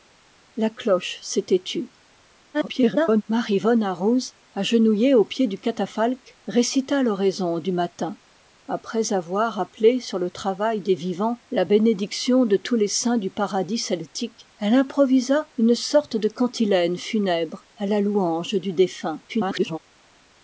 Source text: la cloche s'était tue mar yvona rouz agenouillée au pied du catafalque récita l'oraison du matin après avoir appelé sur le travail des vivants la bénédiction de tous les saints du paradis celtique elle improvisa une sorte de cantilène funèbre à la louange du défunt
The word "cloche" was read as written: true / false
true